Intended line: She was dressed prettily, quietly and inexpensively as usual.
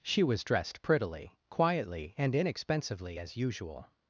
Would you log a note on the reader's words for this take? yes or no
no